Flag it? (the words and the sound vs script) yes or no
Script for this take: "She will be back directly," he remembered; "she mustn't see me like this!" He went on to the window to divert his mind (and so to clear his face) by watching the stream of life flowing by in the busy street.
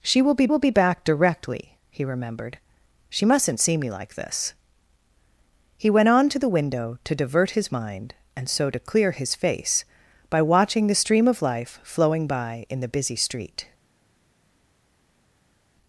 yes